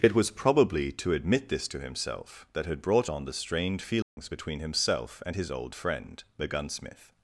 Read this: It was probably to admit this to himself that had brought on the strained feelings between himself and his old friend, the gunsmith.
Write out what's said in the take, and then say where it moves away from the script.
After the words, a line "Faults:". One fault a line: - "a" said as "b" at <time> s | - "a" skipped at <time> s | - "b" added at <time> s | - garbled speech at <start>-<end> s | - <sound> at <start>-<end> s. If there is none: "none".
It was probably to admit this to himself that had brought on the strained feelings between himself and his old friend, the gunsmith.
Faults:
- dropout at 4.0-4.2 s